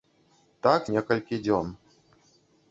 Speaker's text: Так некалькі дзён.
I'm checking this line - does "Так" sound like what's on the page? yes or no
yes